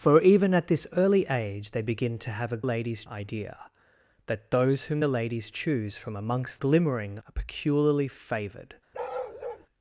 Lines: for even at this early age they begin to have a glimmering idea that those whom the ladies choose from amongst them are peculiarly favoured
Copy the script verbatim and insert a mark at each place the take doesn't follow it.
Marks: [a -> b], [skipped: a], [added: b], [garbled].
for even at this early age they begin to have a [glimmering -> ladies] idea that those whom the ladies choose from amongst [them -> glimmering] are peculiarly favoured